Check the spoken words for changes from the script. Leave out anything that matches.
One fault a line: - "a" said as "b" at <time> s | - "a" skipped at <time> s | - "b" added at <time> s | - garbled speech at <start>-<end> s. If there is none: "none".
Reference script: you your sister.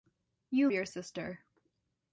none